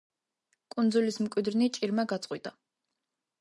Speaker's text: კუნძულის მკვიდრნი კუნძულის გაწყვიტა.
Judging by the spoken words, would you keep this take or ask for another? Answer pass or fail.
fail